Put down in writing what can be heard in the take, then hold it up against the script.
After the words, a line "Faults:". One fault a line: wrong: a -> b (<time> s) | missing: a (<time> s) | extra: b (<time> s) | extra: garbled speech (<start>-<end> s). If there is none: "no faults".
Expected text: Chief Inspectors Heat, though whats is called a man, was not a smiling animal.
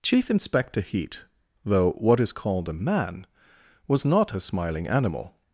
Chief Inspector Heat, though what is called a man, was not a smiling animal.
Faults:
wrong: Inspectors -> Inspector (0.3 s)
wrong: whats -> what (1.9 s)